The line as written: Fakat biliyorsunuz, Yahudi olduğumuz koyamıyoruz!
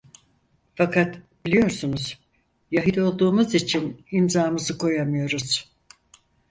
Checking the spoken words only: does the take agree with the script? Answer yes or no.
no